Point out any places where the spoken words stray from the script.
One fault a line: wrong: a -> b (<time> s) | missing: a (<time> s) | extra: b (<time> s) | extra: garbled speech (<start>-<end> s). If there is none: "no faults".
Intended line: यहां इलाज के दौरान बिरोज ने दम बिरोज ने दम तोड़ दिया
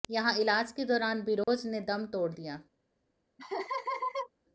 missing: बिरोज ने दम (2.0 s)